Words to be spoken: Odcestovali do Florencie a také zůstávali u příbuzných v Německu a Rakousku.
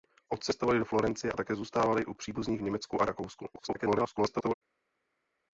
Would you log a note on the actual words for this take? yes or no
yes